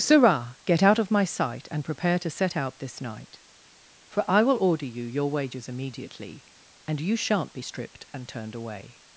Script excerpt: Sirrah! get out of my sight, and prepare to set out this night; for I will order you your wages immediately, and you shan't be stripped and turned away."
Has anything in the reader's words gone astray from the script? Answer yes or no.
no